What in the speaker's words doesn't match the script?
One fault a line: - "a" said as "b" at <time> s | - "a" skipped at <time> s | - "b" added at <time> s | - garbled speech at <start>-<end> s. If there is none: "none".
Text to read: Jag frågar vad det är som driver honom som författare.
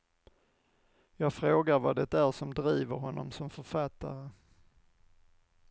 none